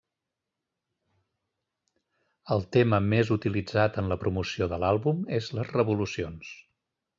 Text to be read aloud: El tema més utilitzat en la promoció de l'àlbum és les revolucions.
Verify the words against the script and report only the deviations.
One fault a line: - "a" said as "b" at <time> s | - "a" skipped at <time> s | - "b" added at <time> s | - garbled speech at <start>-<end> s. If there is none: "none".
none